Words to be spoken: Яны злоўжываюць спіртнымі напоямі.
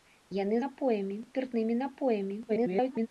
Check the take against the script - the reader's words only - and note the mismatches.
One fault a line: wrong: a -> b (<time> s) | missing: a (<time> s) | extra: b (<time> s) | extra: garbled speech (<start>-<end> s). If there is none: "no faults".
wrong: злоўжываюць -> напоямі (0.7 s)
extra: garbled speech (2.5-3.1 s)